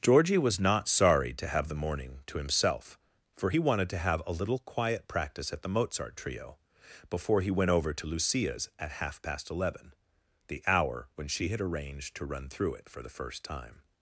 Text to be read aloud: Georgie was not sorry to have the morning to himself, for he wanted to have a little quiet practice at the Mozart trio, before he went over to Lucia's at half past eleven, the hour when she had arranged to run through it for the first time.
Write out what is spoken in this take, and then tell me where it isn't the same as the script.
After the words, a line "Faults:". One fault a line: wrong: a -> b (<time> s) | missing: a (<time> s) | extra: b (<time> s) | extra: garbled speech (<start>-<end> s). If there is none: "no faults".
Georgie was not sorry to have the morning to himself, for he wanted to have a little quiet practice at the Mozart trio, before he went over to Lucia's at half past eleven, the hour when she had arranged to run through it for the first time.
Faults:
no faults